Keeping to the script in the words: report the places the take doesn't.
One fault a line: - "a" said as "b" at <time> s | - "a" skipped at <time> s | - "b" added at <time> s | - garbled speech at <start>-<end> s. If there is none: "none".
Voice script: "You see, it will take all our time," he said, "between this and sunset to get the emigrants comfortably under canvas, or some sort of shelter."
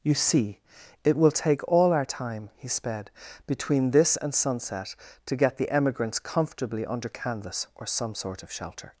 - "said" said as "sped" at 2.7 s